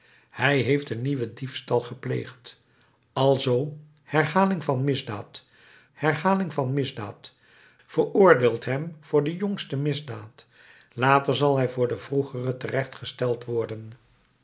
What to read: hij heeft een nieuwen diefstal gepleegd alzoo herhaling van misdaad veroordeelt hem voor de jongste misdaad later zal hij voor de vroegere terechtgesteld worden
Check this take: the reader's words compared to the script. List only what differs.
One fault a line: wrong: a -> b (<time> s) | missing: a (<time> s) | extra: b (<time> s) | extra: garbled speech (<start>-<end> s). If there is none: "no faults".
extra: herhaling van misdaad (5.9 s)